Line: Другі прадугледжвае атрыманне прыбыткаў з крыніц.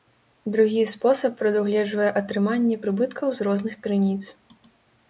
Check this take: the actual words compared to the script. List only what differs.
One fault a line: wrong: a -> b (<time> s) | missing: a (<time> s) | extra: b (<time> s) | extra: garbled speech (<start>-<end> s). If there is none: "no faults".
extra: спосаб (0.9 s)
extra: розных (3.5 s)